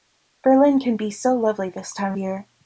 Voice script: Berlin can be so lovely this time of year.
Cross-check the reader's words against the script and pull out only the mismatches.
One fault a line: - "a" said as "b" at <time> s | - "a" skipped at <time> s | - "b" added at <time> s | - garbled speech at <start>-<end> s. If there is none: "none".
- "of" skipped at 2.2 s